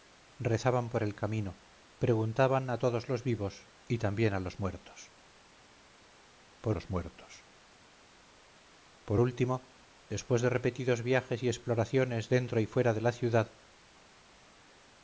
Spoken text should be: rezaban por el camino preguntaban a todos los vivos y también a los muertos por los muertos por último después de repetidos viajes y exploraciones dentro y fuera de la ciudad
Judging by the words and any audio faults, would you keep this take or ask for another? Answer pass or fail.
pass